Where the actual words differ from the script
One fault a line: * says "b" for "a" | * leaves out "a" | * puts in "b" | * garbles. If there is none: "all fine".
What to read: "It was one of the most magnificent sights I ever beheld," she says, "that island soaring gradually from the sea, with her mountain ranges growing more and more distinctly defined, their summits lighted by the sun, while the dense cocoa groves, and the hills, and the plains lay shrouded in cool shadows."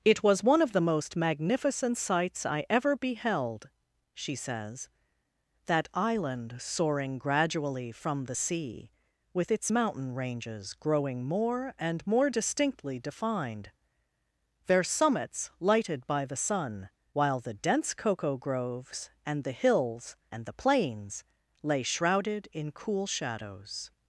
* says "its" for "her"